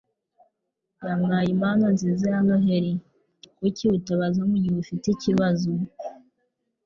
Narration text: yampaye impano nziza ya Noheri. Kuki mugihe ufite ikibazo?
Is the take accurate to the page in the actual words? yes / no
no